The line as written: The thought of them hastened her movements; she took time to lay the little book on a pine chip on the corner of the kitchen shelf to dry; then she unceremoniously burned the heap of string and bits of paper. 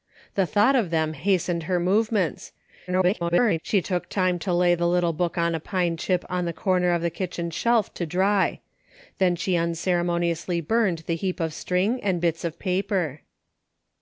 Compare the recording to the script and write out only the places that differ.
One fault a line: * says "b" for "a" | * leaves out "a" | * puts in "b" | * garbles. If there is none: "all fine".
* garbles